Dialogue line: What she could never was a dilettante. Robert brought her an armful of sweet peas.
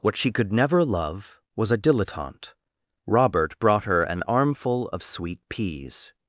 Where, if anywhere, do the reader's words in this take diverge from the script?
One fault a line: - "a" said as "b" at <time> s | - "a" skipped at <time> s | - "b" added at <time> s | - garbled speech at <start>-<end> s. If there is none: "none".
- "love" added at 0.8 s